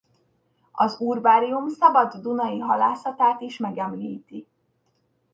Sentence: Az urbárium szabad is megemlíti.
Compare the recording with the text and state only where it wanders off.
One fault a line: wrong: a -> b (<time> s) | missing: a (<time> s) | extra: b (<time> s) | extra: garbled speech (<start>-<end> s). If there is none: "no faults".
extra: dunai halászatát (2.1 s)